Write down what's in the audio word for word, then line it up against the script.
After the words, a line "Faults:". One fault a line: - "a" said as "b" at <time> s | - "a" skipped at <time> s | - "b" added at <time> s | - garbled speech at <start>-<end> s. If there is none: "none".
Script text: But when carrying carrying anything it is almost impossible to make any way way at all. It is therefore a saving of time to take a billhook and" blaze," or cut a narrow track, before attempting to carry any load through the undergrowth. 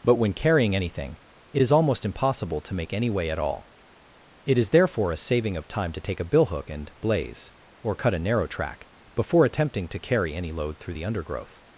But when carrying anything it is almost impossible to make any way at all. It is therefore a saving of time to take a billhook and" blaze," or cut a narrow track, before attempting to carry any load through the undergrowth.
Faults:
- "carrying" skipped at 0.8 s
- "way" skipped at 3.3 s